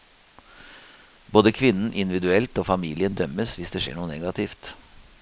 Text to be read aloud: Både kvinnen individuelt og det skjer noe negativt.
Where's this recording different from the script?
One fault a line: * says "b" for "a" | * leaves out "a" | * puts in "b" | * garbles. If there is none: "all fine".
* puts in "familien dømmes hvis"